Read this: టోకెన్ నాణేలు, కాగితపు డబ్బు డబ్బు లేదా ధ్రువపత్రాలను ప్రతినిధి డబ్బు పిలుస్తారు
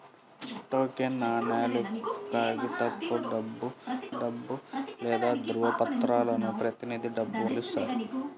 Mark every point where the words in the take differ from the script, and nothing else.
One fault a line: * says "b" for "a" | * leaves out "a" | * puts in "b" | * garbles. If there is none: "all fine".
all fine